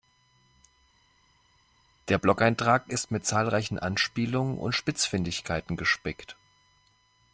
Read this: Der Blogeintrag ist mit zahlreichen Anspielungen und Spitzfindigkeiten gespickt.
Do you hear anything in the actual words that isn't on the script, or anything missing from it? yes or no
no